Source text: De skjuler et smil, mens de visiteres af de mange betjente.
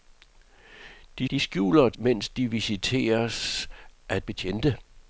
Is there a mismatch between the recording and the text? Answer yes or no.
yes